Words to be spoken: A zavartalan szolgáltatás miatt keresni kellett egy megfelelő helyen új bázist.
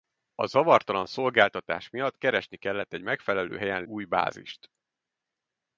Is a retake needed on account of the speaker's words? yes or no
no